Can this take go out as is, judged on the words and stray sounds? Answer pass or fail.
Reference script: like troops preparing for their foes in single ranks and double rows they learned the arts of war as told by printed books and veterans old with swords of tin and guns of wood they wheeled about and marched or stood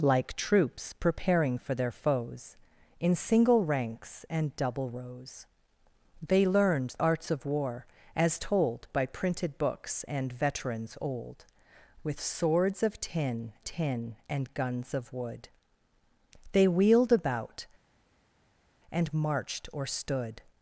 fail